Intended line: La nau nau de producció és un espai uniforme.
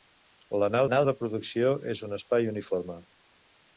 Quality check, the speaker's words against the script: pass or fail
pass